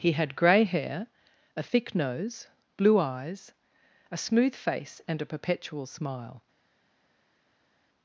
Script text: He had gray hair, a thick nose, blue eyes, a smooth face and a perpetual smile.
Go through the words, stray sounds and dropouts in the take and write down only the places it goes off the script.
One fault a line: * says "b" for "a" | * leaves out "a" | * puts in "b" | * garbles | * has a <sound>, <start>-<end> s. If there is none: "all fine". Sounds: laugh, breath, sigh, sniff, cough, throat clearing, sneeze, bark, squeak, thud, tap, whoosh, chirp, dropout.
all fine